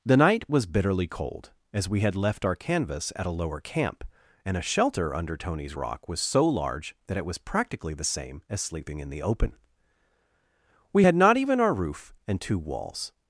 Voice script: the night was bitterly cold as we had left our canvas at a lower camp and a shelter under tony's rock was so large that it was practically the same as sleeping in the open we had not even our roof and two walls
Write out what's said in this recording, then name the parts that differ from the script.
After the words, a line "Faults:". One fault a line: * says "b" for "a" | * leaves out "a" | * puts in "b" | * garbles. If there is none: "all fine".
the night was bitterly cold as we had left our canvas at a lower camp and a shelter under tony's rock was so large that it was practically the same as sleeping in the open we had not even our roof and two walls
Faults:
all fine